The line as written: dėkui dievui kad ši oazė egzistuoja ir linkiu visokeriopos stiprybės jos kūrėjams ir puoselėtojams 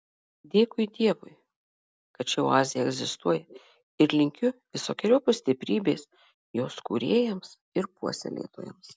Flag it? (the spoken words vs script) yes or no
no